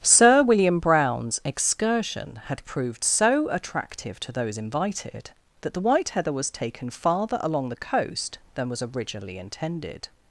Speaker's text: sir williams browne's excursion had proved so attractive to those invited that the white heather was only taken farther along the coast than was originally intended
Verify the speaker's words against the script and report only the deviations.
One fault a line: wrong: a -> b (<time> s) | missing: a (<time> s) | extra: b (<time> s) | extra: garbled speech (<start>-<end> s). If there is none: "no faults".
wrong: williams -> william (0.4 s)
missing: only (6.5 s)